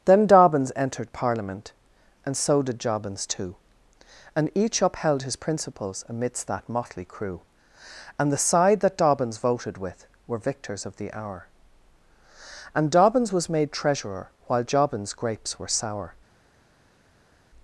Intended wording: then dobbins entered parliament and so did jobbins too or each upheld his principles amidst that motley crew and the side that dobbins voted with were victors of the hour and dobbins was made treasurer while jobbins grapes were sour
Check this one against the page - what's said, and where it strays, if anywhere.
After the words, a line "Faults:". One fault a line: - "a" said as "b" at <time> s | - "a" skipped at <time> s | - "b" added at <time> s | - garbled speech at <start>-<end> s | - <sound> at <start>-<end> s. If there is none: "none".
then dobbins entered parliament and so did jobbins too and each upheld his principles amidst that motley crew and the side that dobbins voted with were victors of the hour and dobbins was made treasurer while jobbins grapes were sour
Faults:
- "or" said as "and" at 4.3 s